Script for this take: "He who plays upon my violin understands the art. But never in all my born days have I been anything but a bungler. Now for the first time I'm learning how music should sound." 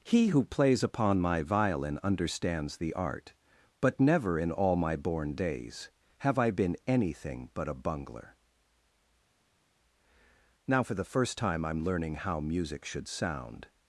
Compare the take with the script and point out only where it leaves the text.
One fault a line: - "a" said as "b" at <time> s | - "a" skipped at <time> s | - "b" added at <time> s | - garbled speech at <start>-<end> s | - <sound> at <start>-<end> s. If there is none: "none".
none